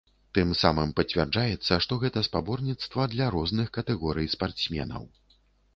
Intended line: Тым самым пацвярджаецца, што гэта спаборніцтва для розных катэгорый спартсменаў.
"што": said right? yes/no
yes